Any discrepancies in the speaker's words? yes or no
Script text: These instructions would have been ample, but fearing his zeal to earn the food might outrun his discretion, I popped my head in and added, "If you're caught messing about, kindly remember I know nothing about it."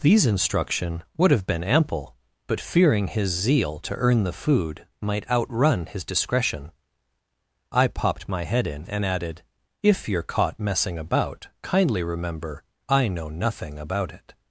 yes